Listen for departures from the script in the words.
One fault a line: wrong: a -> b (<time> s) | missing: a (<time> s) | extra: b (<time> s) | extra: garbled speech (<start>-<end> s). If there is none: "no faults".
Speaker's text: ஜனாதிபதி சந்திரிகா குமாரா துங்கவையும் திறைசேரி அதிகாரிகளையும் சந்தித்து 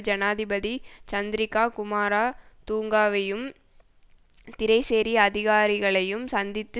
no faults